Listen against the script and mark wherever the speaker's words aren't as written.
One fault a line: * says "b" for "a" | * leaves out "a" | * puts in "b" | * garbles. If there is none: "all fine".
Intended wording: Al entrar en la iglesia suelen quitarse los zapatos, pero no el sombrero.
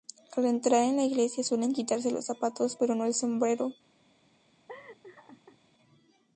all fine